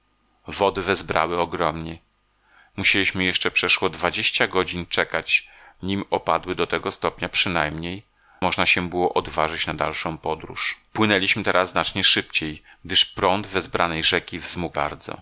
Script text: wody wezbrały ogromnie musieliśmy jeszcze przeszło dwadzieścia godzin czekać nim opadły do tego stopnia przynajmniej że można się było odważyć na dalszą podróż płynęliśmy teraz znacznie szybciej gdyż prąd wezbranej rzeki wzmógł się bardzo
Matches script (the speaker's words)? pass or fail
fail